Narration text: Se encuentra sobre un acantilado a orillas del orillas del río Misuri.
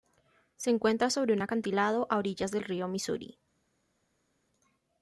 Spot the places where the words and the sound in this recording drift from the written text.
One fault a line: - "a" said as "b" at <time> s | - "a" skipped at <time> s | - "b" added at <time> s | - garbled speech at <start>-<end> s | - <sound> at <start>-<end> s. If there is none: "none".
- "orillas del" skipped at 2.6 s